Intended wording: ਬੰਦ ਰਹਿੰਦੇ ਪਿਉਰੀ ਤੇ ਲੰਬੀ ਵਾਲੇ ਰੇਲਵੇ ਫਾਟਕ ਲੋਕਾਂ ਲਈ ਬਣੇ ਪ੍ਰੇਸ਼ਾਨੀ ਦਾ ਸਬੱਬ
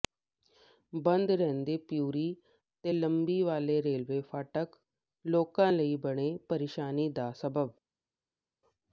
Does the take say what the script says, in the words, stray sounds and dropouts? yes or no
yes